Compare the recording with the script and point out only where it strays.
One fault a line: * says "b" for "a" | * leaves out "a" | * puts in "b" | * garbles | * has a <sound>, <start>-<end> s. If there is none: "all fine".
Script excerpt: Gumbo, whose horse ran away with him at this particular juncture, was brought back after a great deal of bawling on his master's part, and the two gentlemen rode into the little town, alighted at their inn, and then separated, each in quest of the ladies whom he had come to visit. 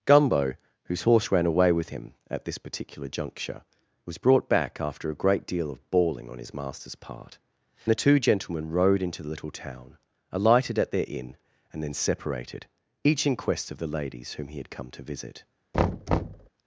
* leaves out "and"
* has a thud, 15.7-16.5 s